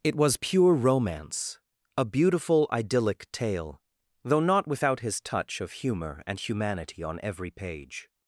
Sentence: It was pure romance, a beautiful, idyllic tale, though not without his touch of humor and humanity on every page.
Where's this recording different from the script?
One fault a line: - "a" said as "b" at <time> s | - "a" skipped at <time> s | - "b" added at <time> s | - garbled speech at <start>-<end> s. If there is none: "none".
none